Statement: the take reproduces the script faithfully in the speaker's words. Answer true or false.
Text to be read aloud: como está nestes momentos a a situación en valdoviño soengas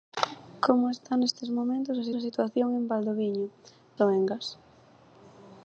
true